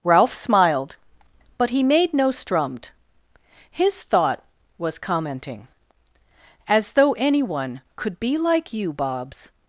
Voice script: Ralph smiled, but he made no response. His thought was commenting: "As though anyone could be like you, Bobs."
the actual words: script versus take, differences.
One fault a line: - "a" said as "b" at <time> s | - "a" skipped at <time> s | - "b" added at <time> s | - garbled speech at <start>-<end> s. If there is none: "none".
- "response" said as "strummed" at 2.3 s